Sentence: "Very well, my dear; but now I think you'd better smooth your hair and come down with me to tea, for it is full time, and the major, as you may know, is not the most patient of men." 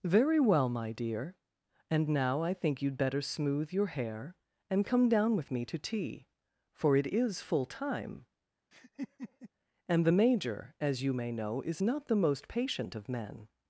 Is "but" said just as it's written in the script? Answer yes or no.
no